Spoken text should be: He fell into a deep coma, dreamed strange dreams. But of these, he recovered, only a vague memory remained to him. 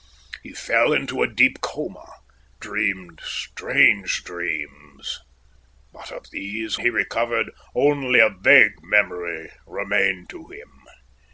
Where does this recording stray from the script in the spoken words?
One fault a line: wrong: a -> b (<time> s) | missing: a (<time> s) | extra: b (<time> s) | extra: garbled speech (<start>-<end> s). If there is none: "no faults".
no faults